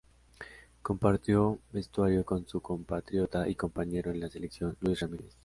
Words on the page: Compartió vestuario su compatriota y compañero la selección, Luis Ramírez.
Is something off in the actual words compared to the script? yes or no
yes